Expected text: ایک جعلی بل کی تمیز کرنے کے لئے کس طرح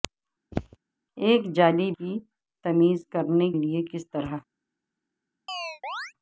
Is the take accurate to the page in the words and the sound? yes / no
no